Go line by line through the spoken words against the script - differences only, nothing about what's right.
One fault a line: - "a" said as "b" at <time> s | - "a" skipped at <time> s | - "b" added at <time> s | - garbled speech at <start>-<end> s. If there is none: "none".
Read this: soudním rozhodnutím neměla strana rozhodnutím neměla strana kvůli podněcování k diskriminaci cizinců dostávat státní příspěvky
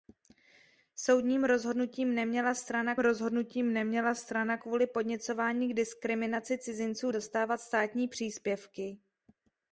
none